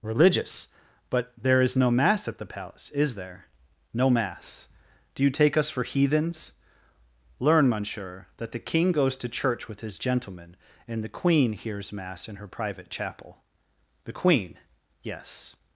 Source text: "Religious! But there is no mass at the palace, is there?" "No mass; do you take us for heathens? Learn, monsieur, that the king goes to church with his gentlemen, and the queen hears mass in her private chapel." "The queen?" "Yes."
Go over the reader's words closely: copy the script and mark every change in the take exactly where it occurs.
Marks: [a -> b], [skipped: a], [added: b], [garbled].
"Religious! But there is no mass at the palace, is there?" "No mass; do you take us for heathens? Learn, monsieur, that the king goes to church with his gentlemen, and the queen hears mass in her private chapel." "The queen?" "Yes."